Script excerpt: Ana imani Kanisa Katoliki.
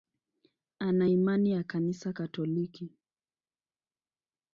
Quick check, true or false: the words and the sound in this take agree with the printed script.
false